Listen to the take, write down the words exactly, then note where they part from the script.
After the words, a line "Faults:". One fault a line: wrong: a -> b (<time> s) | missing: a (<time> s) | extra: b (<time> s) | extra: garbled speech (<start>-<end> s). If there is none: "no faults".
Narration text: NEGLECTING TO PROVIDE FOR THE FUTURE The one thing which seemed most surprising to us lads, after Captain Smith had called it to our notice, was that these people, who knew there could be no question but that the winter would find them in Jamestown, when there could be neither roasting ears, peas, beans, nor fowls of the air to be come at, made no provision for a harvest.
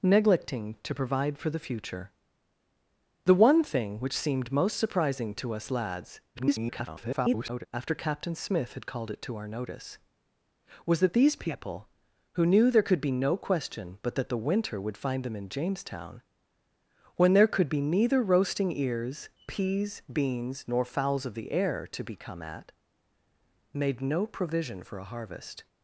NEGLECTING TO PROVIDE FOR THE FUTURE The one thing which seemed most surprising to us lads, [garbled] after Captain Smith had called it to our notice, was that these people, who knew there could be no question but that the winter would find them in Jamestown, when there could be neither roasting ears, peas, beans, nor fowls of the air to be come at, made no provision for a harvest.
Faults:
extra: garbled speech (6.3-7.7 s)